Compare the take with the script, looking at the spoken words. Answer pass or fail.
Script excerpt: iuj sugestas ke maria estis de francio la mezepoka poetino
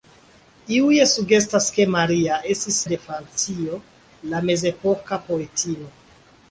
pass